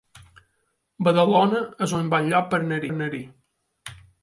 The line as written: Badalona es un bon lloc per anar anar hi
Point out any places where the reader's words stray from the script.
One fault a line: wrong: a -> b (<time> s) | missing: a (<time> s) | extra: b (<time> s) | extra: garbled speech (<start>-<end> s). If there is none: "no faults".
no faults